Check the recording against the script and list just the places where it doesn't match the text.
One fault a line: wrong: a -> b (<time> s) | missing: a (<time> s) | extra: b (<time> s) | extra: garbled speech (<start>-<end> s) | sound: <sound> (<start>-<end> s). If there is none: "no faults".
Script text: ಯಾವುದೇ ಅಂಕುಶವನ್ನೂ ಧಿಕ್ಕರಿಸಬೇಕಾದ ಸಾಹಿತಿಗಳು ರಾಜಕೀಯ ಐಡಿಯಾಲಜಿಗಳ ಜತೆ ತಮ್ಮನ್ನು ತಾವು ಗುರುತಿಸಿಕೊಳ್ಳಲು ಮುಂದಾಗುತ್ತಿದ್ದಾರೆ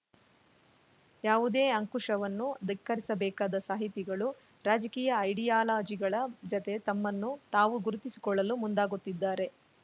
no faults